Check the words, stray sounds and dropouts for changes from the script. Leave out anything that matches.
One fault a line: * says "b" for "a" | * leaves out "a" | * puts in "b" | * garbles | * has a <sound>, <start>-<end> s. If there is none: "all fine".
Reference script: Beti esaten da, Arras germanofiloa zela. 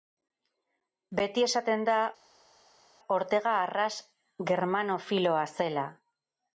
* puts in "Ortega"